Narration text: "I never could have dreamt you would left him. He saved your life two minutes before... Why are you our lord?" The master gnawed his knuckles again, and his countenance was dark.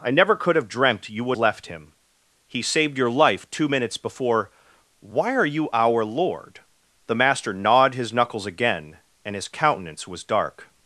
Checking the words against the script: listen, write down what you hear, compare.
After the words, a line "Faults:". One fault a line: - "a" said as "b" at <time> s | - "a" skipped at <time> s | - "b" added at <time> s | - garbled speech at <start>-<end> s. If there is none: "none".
"I never could have dreamt you would left him. He saved your life two minutes before... Why are you our lord?" The master gnawed his knuckles again, and his countenance was dark.
Faults:
none